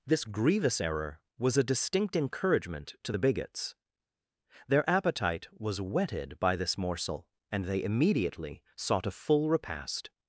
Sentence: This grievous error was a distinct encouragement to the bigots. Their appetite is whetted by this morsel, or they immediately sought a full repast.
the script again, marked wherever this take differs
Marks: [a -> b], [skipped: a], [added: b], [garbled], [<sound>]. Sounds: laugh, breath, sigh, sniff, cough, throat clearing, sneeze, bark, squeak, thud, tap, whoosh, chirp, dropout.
This grievous error was a distinct encouragement to the bigots. Their appetite [is -> was] whetted by this morsel, [or -> and] they immediately sought a full repast.